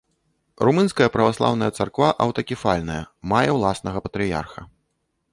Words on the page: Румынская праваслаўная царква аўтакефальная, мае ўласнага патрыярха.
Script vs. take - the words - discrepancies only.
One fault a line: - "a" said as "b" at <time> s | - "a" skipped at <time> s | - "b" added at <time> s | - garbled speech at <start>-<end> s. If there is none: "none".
none